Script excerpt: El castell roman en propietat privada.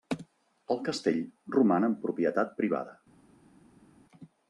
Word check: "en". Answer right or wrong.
right